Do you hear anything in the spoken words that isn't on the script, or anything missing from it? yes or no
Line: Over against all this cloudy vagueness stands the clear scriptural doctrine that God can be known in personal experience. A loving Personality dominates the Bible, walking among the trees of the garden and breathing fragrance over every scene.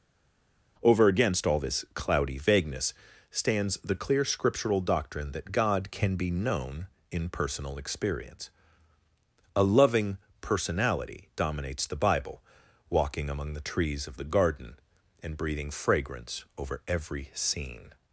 no